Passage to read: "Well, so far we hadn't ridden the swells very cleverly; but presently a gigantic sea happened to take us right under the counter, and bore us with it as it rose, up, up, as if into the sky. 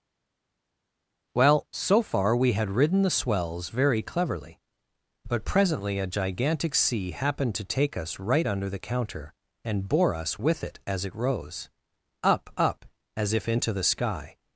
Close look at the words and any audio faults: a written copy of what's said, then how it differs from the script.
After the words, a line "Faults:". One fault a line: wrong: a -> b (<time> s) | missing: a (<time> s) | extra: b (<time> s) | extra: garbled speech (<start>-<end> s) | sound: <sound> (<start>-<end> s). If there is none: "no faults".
"Well, so far we had ridden the swells very cleverly; but presently a gigantic sea happened to take us right under the counter, and bore us with it as it rose, up, up, as if into the sky.
Faults:
wrong: hadn't -> had (2.5 s)